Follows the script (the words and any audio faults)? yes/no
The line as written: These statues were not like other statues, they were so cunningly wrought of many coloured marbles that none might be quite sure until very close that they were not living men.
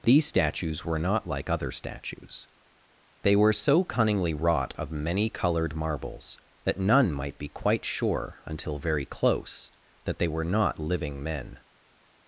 yes